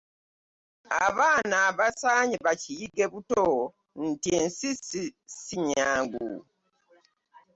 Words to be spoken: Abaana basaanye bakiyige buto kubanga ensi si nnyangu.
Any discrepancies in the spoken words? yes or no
yes